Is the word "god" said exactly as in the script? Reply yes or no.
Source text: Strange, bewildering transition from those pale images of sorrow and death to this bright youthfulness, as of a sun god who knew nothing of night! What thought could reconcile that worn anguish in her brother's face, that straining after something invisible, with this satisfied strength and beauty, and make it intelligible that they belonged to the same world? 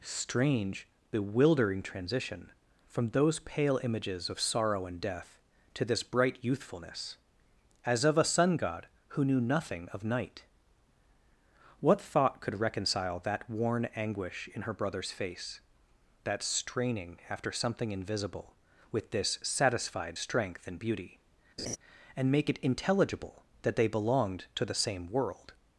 yes